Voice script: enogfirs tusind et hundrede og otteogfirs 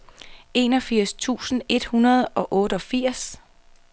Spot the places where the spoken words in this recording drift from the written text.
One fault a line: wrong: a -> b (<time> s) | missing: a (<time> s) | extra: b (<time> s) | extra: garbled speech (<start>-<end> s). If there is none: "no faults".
no faults